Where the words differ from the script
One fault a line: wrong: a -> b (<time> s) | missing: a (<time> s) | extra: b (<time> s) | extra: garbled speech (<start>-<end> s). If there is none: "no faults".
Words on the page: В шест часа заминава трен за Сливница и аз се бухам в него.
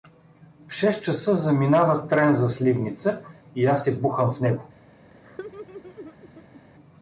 no faults